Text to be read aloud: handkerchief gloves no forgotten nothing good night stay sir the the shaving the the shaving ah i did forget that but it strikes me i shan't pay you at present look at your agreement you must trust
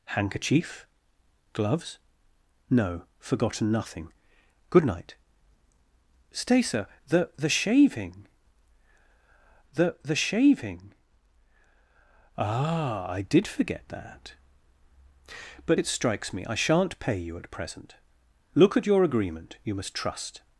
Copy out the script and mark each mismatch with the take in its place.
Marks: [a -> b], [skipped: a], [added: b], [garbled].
handkerchief gloves no forgotten nothing good night stay sir the the shaving the the shaving ah i did forget that but it strikes me i shan't pay you at present look at your agreement you must trust